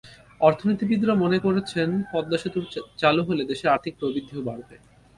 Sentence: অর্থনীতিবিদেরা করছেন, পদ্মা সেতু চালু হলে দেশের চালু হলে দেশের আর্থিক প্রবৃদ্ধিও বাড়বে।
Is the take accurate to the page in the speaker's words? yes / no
no